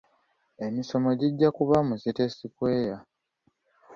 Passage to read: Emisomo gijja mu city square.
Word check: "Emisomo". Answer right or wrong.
right